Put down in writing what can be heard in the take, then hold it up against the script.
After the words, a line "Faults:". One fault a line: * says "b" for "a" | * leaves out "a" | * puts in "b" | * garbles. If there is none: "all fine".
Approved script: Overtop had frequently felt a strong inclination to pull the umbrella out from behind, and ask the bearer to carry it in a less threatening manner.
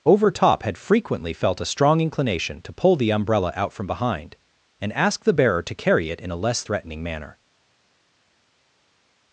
Overtop had frequently felt a strong inclination to pull the umbrella out from behind, and ask the bearer to carry it in a less threatening manner.
Faults:
all fine